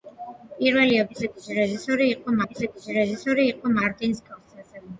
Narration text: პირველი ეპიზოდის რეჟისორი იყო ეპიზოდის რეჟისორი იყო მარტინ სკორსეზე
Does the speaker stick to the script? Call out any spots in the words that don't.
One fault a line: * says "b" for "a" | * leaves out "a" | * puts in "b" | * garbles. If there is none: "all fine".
all fine